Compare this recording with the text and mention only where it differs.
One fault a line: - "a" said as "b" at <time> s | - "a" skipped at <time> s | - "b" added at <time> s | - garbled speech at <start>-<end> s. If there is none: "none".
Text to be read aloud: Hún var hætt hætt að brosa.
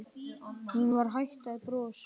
- "hætt" skipped at 1.5 s